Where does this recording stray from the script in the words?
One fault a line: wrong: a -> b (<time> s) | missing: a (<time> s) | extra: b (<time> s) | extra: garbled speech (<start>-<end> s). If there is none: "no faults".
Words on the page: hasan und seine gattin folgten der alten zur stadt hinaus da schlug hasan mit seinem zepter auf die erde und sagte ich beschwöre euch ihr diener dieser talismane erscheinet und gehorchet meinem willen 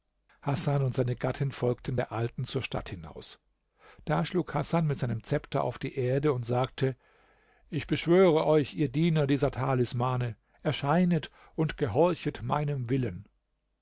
no faults